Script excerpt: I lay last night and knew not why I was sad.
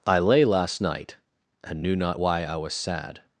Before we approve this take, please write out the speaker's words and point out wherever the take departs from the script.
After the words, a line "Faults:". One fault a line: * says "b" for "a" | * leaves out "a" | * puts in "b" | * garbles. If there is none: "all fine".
I lay last night and knew not why I was sad.
Faults:
all fine